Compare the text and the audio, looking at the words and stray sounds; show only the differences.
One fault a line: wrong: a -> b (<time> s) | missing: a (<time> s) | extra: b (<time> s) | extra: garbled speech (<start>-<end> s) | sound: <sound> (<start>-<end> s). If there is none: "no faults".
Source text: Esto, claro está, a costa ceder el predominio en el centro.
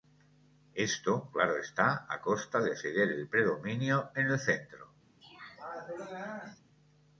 extra: de (2.6 s)
sound: throat clearing (5.2-6.6 s)